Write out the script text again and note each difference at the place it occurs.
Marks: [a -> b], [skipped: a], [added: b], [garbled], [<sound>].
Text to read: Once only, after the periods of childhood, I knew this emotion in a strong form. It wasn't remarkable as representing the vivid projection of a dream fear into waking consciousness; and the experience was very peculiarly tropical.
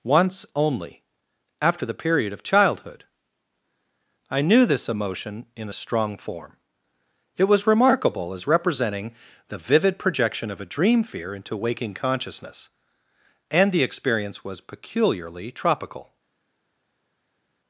Once only, after the [periods -> period] of childhood, I knew this emotion in a strong form. It [wasn't -> was] remarkable as representing the vivid projection of a dream fear into waking consciousness; and the experience was [skipped: very] peculiarly tropical.